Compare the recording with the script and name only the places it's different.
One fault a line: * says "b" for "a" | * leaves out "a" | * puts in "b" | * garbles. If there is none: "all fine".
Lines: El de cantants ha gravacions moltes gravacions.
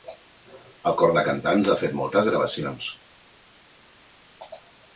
* puts in "cor"
* says "fet" for "gravacions"